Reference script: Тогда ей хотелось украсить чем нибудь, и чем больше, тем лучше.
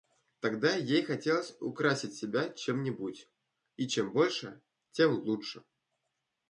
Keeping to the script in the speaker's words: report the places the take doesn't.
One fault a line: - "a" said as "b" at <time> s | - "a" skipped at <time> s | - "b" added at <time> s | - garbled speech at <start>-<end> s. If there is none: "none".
- "себя" added at 2.1 s